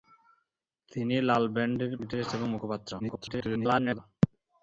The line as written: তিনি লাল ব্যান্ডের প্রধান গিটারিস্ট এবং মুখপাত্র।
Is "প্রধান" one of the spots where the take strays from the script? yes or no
yes